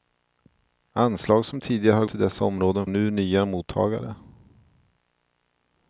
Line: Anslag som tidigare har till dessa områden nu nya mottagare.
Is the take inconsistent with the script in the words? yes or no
no